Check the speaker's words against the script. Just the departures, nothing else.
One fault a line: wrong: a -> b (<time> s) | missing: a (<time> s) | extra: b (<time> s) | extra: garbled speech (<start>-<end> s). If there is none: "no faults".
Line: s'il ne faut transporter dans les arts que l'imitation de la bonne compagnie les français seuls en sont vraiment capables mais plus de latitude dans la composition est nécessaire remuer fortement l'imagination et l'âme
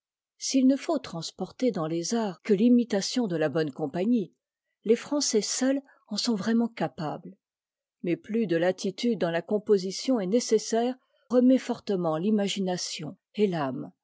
no faults